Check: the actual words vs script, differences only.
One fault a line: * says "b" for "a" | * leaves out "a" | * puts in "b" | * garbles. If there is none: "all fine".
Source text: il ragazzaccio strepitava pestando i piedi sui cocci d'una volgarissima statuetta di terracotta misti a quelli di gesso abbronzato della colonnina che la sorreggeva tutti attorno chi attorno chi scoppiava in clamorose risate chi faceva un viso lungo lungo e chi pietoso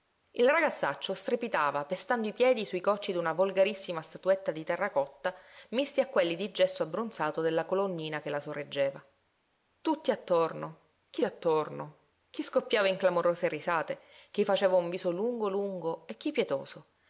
all fine